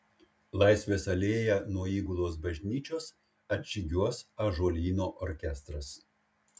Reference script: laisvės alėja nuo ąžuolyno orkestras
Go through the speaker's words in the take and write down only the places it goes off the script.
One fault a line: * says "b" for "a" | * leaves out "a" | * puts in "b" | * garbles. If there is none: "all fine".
* puts in "įgulos bažnyčios atžygiuos"